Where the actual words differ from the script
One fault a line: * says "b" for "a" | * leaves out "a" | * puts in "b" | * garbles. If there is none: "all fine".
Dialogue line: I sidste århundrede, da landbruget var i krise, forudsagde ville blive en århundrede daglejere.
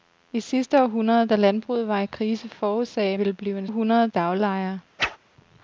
all fine